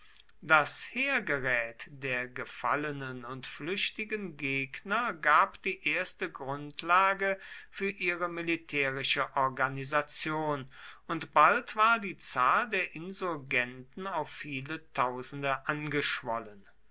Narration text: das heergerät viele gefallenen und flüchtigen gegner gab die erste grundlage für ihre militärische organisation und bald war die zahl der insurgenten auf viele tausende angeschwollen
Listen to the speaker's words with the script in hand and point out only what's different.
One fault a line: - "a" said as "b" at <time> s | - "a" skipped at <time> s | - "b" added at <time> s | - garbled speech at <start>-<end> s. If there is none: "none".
- "viele" said as "der" at 1.9 s